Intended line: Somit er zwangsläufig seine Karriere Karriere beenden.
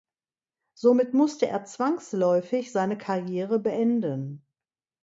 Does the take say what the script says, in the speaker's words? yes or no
no